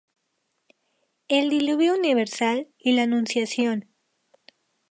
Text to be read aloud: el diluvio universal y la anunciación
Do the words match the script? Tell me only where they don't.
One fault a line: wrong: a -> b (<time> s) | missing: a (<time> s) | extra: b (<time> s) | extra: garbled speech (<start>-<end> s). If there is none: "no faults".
no faults